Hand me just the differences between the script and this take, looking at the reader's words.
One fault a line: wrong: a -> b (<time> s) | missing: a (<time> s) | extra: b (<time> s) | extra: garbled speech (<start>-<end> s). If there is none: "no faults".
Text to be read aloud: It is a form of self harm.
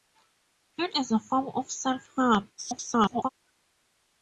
extra: garbled speech (2.6-3.3 s)